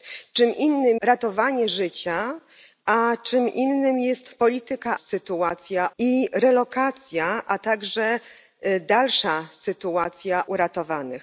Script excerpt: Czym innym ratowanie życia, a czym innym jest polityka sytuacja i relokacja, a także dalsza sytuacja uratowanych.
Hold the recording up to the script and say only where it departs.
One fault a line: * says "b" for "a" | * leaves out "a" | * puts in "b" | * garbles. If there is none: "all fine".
all fine